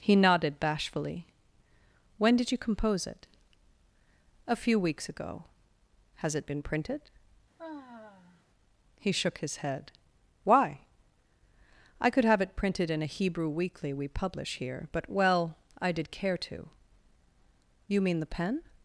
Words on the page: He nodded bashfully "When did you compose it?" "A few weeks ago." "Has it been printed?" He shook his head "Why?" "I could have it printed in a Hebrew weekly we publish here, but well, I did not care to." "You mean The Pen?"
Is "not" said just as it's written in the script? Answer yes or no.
no